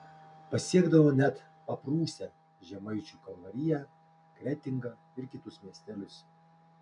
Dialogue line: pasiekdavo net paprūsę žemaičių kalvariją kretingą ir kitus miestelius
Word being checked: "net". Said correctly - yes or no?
yes